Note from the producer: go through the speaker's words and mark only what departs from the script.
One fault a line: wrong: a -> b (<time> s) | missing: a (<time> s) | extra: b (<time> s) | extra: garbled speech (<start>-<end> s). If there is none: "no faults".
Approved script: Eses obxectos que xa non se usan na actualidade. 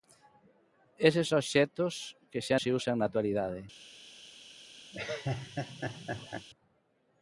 missing: non (2.6 s)